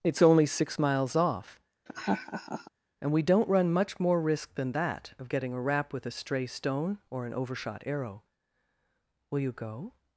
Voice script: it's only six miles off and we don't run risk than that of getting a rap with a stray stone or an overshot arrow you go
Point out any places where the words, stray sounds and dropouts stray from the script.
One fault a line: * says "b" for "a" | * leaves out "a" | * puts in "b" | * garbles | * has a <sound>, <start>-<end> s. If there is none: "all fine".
* has a laugh, 1.9-2.7 s
* puts in "much more"
* puts in "will"